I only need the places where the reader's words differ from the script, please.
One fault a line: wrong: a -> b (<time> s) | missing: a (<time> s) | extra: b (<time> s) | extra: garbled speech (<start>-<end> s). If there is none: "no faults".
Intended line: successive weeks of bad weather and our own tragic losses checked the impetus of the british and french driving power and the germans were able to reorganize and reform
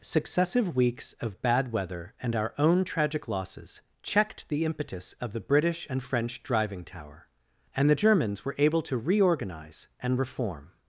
wrong: power -> tower (6.8 s)